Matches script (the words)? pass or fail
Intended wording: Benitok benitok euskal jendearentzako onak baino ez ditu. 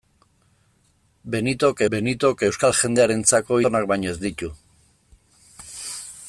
pass